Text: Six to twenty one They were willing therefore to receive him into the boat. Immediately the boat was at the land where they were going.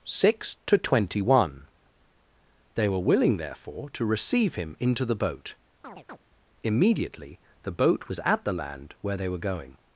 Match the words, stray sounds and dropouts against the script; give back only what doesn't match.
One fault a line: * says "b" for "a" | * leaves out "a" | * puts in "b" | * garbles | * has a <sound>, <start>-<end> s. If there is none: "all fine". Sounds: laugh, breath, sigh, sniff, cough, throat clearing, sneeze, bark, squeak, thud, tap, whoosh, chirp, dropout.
* has a chirp, 5.8-6.2 s